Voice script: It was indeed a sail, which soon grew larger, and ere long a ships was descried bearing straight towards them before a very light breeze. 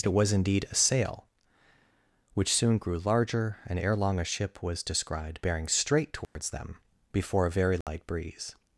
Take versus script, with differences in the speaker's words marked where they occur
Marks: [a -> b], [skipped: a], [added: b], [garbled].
It was indeed a sail, which soon grew larger, and ere long a [ships -> ship] was descried bearing straight towards them before a very light breeze.